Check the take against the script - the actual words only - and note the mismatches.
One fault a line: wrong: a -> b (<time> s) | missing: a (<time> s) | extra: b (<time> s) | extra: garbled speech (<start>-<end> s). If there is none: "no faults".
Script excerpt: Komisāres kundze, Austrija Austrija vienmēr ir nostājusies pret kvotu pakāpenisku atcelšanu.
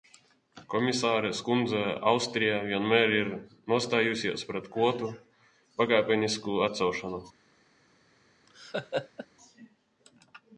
missing: Austrija (2.6 s)